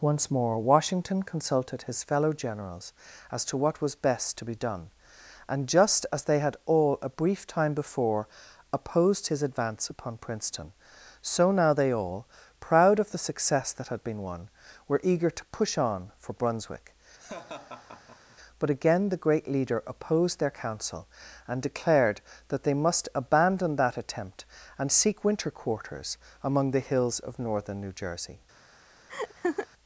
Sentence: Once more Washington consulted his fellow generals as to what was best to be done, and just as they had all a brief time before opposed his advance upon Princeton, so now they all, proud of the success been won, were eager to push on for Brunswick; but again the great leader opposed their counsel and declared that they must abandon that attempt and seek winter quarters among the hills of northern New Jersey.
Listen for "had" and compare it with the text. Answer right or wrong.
right